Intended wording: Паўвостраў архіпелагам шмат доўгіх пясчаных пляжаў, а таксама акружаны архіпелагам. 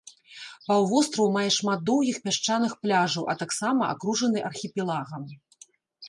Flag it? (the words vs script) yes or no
yes